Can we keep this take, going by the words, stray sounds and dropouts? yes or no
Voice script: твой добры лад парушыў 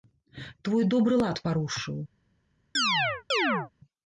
no